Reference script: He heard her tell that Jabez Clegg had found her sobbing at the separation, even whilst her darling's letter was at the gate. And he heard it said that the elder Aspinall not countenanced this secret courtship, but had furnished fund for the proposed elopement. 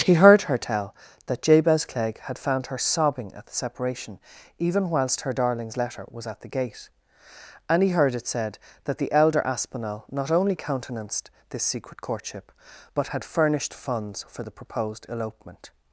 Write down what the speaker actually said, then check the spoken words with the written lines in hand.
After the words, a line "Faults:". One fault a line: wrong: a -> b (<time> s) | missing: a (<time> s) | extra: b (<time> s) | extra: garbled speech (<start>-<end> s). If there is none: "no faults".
He heard her tell that Jabez Clegg had found her sobbing at the separation, even whilst her darling's letter was at the gate. And he heard it said that the elder Aspinall not only countenanced this secret courtship, but had furnished funds for the proposed elopement.
Faults:
extra: only (10.3 s)
wrong: fund -> funds (13.7 s)